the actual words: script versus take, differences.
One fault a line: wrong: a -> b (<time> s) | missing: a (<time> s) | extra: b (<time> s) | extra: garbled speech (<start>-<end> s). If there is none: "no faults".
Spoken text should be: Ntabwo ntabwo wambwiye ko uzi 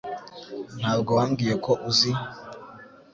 missing: ntabwo (1.1 s)